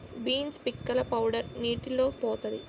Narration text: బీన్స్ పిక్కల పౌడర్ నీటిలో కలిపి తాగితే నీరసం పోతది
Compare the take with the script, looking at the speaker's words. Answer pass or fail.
fail